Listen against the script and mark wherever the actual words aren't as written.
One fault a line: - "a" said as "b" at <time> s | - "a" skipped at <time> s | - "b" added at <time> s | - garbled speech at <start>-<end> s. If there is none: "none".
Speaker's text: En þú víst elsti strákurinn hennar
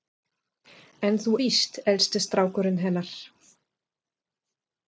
none